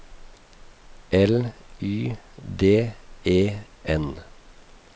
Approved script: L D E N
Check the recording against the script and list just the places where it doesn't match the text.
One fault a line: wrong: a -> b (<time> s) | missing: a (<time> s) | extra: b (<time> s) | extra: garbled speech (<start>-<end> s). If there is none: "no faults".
extra: Y (1.8 s)